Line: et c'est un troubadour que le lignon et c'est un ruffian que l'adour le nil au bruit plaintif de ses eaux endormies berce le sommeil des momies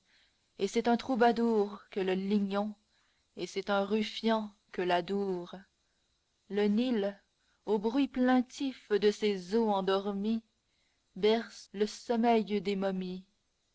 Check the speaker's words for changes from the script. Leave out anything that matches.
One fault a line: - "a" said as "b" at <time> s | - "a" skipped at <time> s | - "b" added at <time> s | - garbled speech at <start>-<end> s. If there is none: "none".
none